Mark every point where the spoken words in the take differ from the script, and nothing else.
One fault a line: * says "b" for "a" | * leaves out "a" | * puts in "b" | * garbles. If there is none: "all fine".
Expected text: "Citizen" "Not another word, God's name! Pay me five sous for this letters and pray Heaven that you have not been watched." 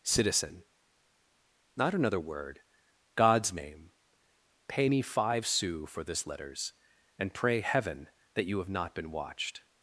all fine